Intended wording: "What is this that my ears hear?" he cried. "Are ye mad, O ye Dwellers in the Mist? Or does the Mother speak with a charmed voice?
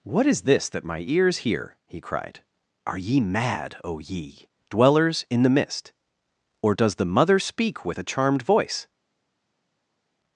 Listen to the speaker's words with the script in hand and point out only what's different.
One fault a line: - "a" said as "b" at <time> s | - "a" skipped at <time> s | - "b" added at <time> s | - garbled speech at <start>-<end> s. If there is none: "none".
none